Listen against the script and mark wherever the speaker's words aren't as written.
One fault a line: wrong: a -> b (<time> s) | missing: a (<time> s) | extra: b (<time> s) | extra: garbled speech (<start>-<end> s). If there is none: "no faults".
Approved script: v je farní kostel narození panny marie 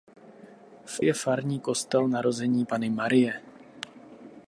no faults